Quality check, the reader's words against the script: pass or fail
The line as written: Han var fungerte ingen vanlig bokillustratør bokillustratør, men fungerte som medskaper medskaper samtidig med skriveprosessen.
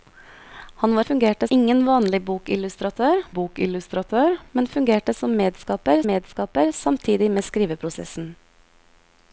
pass